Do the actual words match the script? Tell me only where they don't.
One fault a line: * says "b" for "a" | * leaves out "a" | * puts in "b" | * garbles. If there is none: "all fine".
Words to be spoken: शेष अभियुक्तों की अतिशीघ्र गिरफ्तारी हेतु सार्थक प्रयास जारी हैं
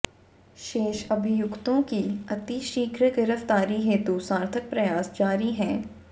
all fine